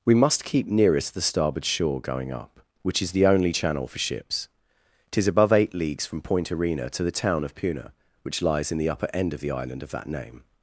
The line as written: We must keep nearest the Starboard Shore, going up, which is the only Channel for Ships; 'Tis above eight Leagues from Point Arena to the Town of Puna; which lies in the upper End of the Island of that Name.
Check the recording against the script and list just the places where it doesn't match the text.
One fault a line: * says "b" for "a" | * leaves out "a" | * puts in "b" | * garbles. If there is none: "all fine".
all fine